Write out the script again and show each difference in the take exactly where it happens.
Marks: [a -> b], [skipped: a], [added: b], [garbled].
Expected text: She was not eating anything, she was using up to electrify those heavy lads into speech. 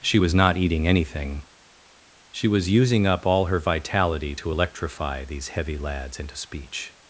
She was not eating anything, she was using up [added: all her vitality] to electrify [those -> these] heavy lads into speech.